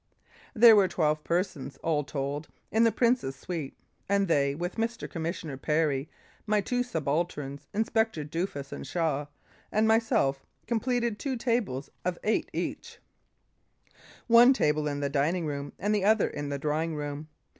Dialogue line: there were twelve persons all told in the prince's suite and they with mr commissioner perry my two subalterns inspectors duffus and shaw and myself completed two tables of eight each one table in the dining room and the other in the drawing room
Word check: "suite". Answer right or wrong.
right